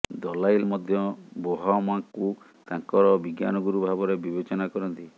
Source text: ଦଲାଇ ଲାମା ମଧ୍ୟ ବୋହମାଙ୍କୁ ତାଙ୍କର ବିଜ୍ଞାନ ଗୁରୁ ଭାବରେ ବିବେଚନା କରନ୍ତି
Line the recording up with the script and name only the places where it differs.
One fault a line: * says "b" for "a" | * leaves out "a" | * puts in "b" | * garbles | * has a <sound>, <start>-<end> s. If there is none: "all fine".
* leaves out "ଲାମା"